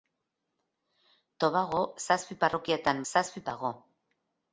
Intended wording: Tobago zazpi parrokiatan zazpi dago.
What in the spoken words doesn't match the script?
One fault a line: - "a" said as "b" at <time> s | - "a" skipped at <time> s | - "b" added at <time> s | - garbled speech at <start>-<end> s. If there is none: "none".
none